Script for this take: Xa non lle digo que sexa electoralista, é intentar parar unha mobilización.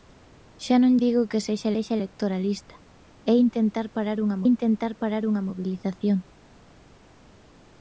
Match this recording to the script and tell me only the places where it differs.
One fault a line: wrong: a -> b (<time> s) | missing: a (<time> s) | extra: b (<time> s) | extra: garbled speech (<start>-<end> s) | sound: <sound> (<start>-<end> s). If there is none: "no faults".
missing: lle (0.9 s)
extra: sexa (1.7 s)
extra: intentar parar unha (4.5 s)